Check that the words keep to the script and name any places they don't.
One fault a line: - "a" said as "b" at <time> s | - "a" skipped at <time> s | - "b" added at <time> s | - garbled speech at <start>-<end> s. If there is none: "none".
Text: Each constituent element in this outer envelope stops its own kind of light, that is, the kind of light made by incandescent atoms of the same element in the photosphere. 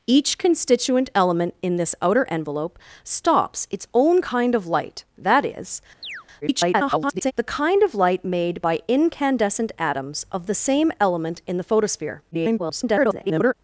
- garbled speech at 6.4-7.3 s
- garbled speech at 12.3-13.5 s